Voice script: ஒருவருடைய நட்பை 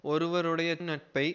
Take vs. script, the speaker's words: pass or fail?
pass